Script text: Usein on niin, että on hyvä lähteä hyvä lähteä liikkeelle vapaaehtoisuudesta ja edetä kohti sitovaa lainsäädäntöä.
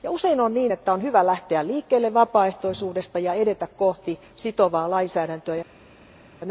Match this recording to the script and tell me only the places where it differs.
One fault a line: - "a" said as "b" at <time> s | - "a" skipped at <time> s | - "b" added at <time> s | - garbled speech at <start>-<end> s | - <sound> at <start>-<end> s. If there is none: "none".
- "hyvä lähteä" skipped at 1.7 s